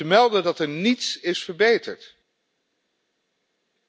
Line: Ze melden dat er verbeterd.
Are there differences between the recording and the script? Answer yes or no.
yes